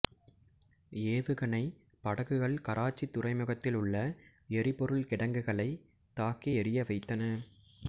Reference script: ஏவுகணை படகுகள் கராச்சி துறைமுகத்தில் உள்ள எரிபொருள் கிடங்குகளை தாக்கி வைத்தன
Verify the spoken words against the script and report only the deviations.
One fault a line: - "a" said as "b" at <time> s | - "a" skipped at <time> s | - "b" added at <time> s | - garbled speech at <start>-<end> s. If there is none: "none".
- "எரிய" added at 6.5 s